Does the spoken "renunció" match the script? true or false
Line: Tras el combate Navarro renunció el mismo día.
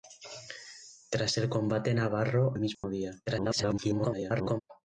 false